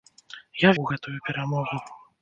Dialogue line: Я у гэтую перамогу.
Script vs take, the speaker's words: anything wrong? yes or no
no